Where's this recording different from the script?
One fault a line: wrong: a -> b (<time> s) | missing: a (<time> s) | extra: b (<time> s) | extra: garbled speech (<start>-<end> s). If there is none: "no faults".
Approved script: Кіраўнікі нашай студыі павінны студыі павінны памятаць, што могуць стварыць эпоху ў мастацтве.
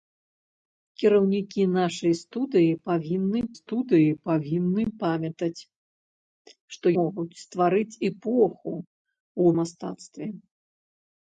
no faults